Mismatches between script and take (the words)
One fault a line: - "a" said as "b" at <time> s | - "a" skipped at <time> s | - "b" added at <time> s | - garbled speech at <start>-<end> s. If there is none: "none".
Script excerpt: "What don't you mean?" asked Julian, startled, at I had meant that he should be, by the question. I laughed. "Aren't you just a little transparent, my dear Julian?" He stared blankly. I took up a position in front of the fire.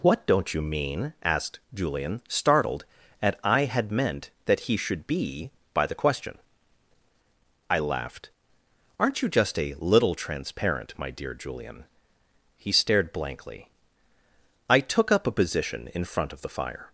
none